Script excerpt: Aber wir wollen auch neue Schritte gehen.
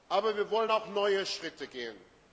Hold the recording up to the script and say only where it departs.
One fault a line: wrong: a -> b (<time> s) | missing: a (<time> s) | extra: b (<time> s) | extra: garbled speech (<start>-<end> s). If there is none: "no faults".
no faults